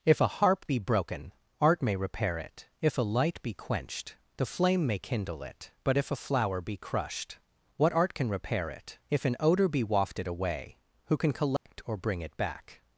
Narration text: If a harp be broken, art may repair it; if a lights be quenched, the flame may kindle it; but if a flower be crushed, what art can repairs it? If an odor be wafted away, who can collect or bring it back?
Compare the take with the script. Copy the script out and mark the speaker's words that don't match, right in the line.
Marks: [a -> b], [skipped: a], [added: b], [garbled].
If a harp be broken, art may repair it; if a [lights -> light] be quenched, the flame may kindle it; but if a flower be crushed, what art can [repairs -> repair] it? If an odor be wafted away, who can collect or bring it back?